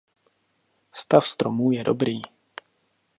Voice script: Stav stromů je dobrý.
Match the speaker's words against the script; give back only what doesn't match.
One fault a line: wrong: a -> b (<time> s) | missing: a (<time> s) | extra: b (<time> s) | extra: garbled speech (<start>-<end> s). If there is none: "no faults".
no faults